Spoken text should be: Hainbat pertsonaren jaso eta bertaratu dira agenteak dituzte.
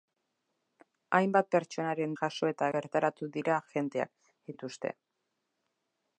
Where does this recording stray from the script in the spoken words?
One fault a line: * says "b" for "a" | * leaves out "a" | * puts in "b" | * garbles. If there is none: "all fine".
all fine